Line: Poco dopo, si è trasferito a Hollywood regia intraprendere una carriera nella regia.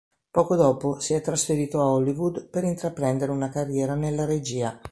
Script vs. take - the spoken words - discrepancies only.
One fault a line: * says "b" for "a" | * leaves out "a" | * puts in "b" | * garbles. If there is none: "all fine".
* says "per" for "regia"